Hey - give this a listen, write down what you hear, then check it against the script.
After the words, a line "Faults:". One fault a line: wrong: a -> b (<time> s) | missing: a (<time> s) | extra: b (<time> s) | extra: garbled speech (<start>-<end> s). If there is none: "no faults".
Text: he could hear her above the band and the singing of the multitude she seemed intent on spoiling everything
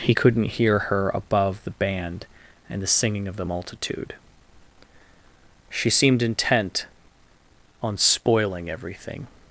he couldn't hear her above the band and the singing of the multitude she seemed intent on spoiling everything
Faults:
wrong: could -> couldn't (0.1 s)